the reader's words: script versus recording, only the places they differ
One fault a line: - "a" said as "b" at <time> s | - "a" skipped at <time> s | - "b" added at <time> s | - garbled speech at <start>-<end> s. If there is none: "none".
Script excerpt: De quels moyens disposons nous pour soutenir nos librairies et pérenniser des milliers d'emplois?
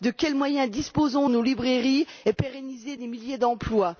- "nous pour soutenir" skipped at 1.3 s